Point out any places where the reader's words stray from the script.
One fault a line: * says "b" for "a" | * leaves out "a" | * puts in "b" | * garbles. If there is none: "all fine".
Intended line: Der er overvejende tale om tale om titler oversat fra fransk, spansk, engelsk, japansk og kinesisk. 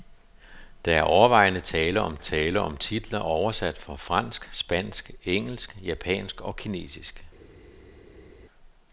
all fine